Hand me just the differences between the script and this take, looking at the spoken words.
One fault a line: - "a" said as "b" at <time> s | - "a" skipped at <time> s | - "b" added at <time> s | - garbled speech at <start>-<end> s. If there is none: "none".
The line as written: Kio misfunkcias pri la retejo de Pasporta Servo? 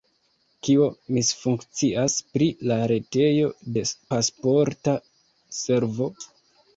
none